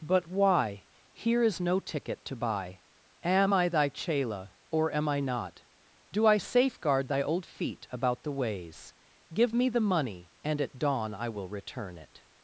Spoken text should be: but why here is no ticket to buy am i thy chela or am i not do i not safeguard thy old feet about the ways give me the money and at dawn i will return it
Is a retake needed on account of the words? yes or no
yes